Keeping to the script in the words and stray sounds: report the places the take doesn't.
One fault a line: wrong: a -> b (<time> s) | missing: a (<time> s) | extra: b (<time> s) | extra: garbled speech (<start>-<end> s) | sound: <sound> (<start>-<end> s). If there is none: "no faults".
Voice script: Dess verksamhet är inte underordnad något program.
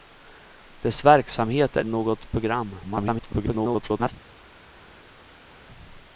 missing: inte underordnad (1.9 s)
extra: garbled speech (2.8-4.1 s)